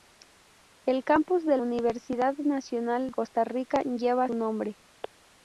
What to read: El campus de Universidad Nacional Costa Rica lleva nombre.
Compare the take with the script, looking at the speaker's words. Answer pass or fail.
pass